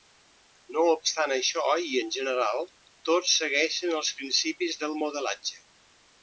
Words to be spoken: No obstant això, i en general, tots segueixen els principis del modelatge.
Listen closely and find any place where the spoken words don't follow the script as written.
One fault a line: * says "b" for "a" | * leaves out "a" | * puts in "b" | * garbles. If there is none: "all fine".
all fine